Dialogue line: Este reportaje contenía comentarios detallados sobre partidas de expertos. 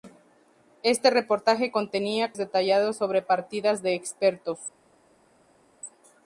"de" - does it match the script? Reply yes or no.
yes